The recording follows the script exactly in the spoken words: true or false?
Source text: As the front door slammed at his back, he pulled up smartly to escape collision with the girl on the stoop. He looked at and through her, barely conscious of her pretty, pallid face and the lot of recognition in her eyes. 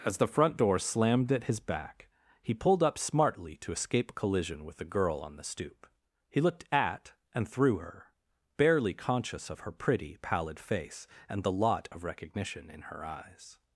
true